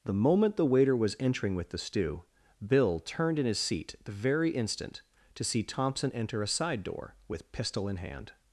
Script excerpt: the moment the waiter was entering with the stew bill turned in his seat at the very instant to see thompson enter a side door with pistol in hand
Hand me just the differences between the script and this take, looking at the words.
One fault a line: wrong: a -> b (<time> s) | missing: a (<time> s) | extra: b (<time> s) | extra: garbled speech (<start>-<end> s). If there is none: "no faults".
missing: at (3.9 s)